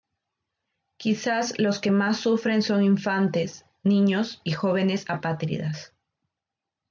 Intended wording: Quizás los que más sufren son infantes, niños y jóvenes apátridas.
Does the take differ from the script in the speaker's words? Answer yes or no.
no